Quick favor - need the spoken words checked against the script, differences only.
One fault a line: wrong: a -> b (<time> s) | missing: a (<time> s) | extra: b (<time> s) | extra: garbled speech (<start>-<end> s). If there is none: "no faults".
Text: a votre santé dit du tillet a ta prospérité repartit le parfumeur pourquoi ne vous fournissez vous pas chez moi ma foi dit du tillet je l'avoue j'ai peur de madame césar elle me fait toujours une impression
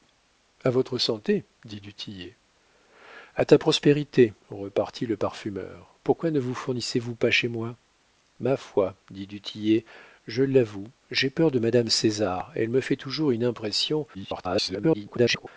extra: garbled speech (14.1-15.5 s)